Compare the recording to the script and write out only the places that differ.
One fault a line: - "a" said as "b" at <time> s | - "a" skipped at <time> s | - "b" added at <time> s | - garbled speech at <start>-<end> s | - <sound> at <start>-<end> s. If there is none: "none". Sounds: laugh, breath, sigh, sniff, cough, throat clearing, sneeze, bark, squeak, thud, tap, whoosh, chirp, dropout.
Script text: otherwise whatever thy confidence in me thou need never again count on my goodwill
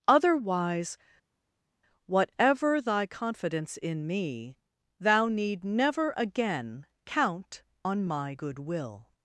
none